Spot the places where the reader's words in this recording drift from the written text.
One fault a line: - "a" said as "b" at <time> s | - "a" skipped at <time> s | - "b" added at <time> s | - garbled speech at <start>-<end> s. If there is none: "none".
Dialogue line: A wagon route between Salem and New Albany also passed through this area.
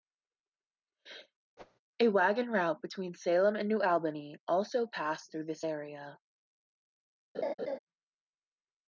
none